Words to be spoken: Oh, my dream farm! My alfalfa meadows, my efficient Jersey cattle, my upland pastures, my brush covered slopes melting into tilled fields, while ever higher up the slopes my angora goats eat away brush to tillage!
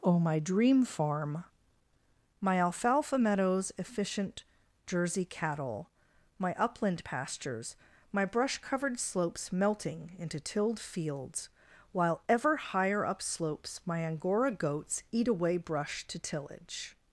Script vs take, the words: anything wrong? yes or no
yes